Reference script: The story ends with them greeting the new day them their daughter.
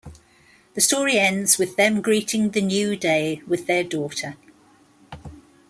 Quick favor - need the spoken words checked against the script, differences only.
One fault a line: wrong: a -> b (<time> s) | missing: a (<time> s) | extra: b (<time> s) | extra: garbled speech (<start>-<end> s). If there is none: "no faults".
wrong: them -> with (3.5 s)